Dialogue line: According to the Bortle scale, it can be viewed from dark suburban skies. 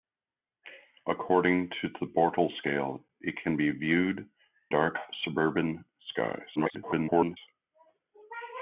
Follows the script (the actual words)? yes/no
no